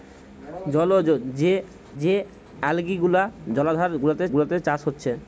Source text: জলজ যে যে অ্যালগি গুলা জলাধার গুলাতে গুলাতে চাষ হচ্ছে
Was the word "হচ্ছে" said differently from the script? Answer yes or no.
no